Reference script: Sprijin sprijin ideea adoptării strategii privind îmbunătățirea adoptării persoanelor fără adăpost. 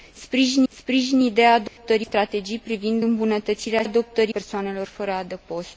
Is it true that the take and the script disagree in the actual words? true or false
false